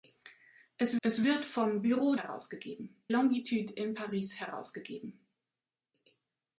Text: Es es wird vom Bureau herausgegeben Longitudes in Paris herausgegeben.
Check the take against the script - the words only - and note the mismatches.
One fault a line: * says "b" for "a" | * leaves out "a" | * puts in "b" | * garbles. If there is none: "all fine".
all fine